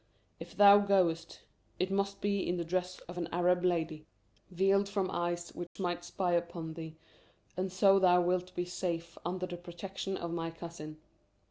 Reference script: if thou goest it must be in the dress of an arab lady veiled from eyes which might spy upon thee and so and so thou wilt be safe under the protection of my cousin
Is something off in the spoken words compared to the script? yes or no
yes